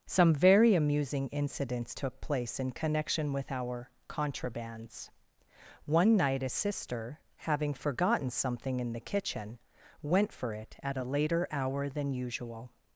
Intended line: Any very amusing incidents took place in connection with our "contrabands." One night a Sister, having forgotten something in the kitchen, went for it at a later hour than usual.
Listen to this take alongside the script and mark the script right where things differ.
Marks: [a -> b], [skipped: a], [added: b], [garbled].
[Any -> Some] very amusing incidents took place in connection with our "contrabands." One night a Sister, having forgotten something in the kitchen, went for it at a later hour than usual.